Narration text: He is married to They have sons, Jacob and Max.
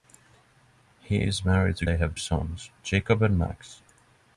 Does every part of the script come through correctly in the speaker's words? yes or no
yes